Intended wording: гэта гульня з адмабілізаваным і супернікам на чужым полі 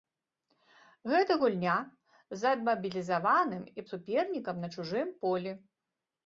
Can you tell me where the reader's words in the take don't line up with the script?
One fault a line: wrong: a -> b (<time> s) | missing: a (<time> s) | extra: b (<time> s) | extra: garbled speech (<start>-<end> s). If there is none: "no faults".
no faults